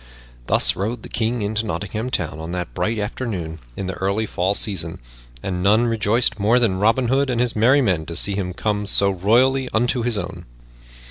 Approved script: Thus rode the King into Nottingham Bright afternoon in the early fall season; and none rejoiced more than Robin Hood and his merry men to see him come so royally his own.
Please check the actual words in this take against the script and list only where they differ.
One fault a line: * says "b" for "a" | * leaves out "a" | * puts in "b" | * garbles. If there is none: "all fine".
* puts in "Town on that"
* puts in "unto"